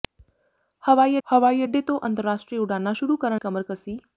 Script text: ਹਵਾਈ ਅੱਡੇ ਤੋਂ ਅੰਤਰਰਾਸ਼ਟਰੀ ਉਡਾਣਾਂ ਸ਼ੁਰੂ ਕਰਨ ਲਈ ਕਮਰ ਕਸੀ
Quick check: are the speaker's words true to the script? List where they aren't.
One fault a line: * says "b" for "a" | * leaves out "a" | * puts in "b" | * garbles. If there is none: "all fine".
* puts in "ਹਵਾਈ"
* leaves out "ਲਈ"